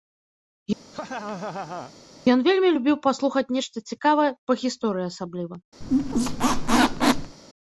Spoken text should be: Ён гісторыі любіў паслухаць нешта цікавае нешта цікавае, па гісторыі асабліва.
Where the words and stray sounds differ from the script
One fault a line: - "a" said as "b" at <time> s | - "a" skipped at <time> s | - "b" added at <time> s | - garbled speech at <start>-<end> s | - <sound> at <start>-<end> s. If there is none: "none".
- laugh at 0.9-1.9 s
- "гісторыі" said as "вельмі" at 2.5 s
- "нешта цікавае" skipped at 4.3 s
- squeak at 5.8-7.4 s